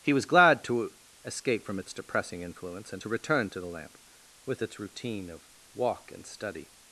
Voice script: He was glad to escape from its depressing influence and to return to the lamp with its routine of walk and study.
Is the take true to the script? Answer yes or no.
yes